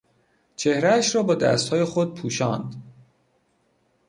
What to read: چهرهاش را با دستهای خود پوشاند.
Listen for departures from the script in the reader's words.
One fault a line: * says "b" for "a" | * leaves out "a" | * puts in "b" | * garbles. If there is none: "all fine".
all fine